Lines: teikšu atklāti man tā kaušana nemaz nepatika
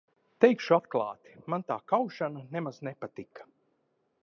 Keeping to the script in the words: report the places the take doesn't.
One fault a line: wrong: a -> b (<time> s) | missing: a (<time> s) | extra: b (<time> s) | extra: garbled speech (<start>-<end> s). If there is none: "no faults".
no faults